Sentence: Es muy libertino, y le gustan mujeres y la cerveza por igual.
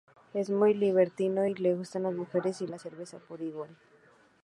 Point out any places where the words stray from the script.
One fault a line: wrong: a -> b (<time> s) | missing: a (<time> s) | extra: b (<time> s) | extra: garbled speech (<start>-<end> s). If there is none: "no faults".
extra: las (2.0 s)